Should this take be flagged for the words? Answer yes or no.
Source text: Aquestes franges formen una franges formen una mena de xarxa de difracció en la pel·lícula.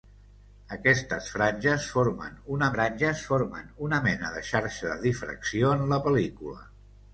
no